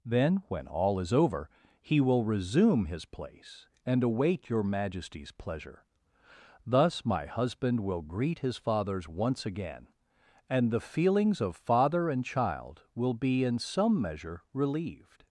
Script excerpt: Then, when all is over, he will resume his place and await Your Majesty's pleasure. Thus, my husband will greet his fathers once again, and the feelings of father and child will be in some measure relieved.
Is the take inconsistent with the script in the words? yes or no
no